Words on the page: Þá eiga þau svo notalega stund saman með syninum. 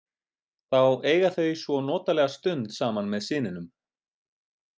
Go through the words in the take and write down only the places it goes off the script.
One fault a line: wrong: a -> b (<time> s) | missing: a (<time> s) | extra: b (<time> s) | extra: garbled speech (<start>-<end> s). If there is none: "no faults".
no faults